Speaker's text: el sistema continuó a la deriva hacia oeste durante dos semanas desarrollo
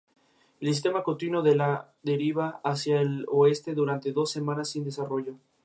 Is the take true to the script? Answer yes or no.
no